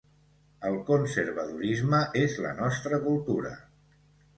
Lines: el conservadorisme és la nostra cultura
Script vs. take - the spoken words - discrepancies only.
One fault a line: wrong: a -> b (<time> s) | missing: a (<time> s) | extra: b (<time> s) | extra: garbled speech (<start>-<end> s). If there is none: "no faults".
no faults